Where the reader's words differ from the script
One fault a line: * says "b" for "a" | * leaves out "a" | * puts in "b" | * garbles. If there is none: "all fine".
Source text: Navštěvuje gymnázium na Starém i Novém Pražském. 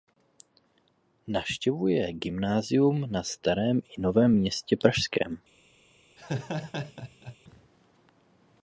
* puts in "Městě"